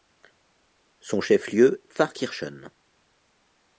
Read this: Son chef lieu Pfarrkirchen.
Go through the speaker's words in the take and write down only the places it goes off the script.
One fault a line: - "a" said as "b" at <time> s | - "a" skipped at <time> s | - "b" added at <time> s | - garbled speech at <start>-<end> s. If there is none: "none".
none